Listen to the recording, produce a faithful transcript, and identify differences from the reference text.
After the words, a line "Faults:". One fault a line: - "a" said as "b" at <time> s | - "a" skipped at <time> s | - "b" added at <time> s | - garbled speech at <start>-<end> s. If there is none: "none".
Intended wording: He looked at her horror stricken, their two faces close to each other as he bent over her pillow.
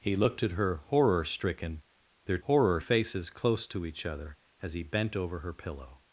He looked at her horror stricken, their horror faces close to each other as he bent over her pillow.
Faults:
- "two" said as "horror" at 2.4 s